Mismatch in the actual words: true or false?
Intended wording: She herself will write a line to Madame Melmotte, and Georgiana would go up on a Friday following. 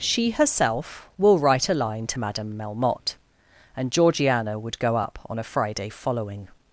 false